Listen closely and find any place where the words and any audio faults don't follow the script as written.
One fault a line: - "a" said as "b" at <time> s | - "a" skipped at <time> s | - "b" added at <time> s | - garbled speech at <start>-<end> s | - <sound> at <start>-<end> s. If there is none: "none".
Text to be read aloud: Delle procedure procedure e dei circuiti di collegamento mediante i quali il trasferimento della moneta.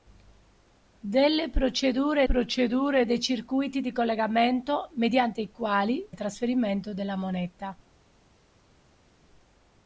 none